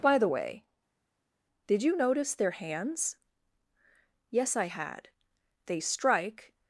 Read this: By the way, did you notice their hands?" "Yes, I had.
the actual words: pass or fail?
fail